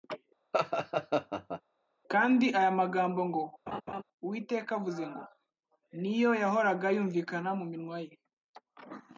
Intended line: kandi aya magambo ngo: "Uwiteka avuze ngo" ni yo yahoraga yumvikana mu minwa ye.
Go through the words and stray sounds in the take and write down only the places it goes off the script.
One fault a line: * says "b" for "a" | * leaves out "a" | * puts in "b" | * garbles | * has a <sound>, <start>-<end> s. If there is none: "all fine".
* has a laugh, 0.5-1.6 s
* has a laugh, 3.7-4.0 s